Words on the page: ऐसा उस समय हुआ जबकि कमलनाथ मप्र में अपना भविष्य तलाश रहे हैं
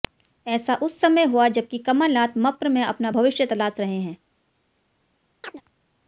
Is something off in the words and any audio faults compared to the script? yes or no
yes